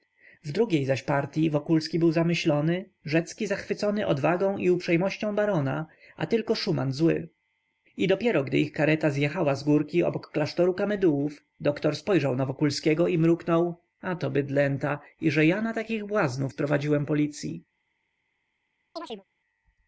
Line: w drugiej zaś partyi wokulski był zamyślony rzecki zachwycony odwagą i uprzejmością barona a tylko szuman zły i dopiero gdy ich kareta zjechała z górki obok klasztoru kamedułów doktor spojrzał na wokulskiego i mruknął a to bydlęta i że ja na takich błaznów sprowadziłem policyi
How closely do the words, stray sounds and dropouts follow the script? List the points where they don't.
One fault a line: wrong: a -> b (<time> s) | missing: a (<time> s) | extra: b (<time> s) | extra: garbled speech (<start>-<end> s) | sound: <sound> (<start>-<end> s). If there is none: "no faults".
sound: chirp (19.0-19.2 s)